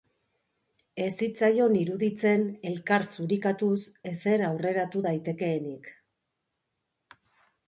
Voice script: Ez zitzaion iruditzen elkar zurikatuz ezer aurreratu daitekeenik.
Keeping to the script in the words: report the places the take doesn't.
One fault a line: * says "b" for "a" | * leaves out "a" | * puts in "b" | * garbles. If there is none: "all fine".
all fine